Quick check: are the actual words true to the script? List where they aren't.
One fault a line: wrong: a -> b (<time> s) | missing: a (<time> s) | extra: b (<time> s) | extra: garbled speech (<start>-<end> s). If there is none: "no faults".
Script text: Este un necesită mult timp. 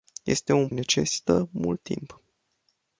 no faults